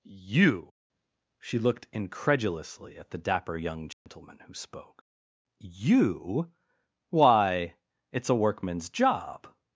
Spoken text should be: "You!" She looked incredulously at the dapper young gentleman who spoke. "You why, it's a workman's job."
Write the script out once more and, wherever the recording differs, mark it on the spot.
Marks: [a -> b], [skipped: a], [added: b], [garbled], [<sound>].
"You!" She looked incredulously at the dapper young gentleman [dropout] who spoke. "You why, it's a workman's job."